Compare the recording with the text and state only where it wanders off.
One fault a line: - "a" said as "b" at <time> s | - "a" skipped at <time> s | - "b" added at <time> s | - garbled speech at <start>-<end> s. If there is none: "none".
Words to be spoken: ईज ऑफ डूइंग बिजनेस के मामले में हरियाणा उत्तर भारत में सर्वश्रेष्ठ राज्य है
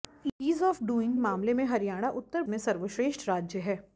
- "बिजनेस के" skipped at 1.1 s
- "भारत" skipped at 2.4 s